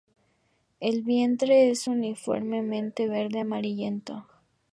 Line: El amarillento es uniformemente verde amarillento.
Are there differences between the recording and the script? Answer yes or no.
yes